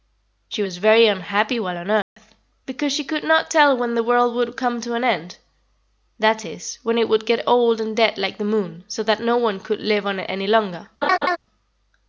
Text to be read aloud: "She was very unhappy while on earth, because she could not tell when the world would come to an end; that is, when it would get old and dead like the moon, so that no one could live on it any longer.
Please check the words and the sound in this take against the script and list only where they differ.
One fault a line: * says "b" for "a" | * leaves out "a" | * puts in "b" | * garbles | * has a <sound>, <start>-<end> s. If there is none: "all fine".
* has a dropout, 2.0-2.2 s
* has a laugh, 11.0-11.4 s